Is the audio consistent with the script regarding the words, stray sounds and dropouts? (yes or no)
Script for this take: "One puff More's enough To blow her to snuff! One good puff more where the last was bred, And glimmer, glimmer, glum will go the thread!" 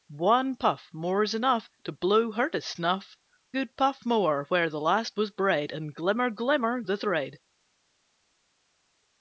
no